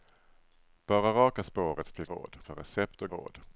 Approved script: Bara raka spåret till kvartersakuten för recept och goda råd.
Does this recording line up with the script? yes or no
no